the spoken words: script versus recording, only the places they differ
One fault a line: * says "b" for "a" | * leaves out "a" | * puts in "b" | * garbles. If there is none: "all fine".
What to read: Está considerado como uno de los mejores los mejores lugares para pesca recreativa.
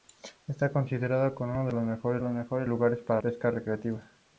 all fine